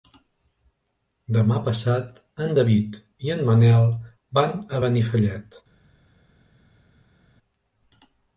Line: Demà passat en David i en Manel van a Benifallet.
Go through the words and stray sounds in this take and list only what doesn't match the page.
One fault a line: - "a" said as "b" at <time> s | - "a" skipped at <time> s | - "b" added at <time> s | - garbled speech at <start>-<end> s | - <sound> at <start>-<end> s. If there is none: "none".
none